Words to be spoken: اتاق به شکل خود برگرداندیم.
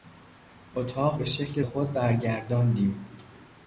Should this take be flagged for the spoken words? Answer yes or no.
no